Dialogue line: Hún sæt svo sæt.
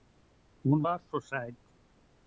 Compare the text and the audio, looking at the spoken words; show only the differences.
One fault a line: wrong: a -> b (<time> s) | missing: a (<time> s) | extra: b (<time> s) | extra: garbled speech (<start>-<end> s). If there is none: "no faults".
wrong: sæt -> var (0.8 s)